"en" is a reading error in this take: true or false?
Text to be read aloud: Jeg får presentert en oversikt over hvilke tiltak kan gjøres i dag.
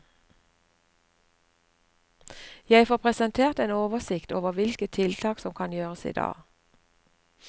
false